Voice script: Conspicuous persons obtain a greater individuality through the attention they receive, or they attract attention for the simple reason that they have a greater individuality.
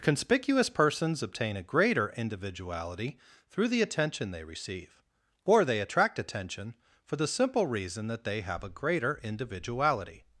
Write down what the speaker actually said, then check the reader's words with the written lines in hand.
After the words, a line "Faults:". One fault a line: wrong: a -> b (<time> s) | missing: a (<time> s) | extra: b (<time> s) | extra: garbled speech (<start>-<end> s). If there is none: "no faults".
Conspicuous persons obtain a greater individuality through the attention they receive, or they attract attention for the simple reason that they have a greater individuality.
Faults:
no faults